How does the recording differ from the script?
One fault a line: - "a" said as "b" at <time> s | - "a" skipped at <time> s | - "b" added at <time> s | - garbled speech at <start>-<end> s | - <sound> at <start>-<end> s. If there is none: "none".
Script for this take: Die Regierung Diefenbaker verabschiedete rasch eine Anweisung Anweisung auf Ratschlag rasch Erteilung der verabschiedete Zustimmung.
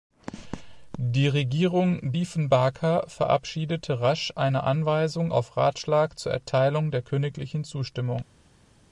- "Anweisung" skipped at 5.3 s
- "rasch" said as "zur" at 6.2 s
- "verabschiedete" said as "königlichen" at 7.0 s